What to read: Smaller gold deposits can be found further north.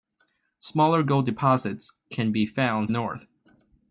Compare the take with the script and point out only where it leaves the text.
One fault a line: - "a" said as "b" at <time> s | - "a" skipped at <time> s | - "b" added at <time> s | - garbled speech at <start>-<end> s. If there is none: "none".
- "further" skipped at 2.9 s